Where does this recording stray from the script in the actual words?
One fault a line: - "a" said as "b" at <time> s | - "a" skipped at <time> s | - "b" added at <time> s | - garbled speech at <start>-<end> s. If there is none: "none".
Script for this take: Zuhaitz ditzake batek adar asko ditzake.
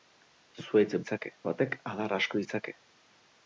none